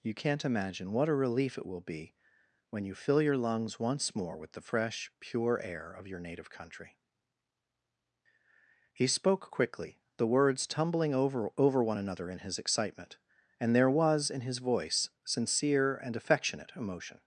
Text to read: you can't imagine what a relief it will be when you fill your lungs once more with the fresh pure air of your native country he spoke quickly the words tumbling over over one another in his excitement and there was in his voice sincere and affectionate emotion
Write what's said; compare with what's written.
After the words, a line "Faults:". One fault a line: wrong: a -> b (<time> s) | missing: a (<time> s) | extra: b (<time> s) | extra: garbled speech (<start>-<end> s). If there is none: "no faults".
you can't imagine what a relief it will be when you fill your lungs once more with the fresh pure air of your native country he spoke quickly the words tumbling over over one another in his excitement and there was in his voice sincere and affectionate emotion
Faults:
no faults